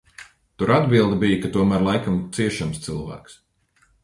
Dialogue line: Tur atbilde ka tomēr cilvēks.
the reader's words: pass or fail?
fail